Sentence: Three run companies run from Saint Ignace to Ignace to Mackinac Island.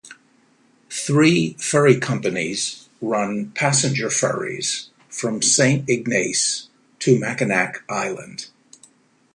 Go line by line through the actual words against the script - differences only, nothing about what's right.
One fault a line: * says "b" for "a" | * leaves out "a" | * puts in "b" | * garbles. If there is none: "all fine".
* says "ferry" for "run"
* puts in "passenger ferries"
* leaves out "Ignace to"